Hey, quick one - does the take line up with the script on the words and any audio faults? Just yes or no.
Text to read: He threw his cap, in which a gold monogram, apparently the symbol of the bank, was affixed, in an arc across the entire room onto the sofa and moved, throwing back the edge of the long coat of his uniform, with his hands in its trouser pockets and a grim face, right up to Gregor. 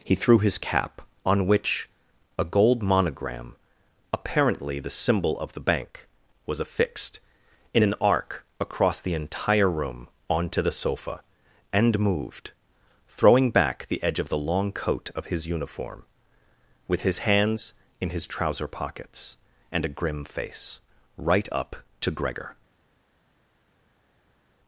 no